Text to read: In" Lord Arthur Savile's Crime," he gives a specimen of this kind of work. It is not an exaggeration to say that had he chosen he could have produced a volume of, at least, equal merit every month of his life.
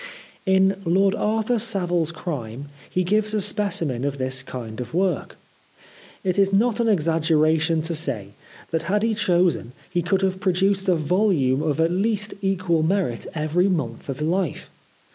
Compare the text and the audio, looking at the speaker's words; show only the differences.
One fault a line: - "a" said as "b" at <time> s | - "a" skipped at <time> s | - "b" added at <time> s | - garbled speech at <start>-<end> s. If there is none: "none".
- "his" skipped at 14.2 s